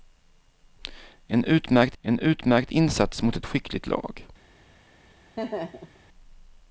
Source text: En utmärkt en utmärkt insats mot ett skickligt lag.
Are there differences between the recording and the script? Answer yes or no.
no